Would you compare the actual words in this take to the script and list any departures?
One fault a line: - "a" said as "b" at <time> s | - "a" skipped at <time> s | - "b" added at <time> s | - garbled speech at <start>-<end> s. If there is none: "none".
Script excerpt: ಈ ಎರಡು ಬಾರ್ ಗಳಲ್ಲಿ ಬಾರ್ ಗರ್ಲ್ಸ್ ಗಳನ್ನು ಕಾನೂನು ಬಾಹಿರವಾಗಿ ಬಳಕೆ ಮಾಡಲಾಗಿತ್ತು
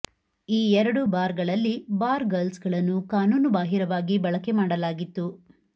none